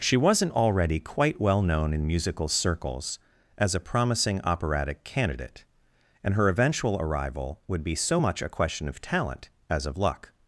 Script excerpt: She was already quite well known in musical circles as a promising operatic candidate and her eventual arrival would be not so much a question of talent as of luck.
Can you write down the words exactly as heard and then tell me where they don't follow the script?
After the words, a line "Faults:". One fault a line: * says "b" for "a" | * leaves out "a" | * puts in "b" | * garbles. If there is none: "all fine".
She wasn't already quite well known in musical circles as a promising operatic candidate and her eventual arrival would be so much a question of talent as of luck.
Faults:
* says "wasn't" for "was"
* leaves out "not"